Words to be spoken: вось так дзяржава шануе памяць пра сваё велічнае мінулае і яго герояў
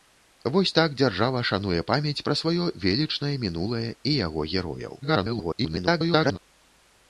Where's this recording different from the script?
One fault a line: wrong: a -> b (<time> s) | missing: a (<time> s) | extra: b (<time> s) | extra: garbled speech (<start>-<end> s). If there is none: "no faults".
extra: garbled speech (5.0-6.4 s)